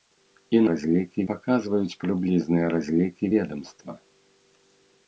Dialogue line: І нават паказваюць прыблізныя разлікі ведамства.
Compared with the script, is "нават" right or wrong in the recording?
wrong